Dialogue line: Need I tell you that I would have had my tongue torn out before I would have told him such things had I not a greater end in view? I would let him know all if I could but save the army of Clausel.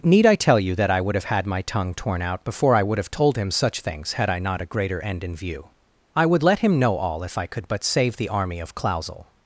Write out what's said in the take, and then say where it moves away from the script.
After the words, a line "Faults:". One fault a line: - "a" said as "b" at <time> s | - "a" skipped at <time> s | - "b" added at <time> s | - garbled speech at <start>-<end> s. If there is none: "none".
Need I tell you that I would have had my tongue torn out before I would have told him such things had I not a greater end in view? I would let him know all if I could but save the army of Clausel.
Faults:
none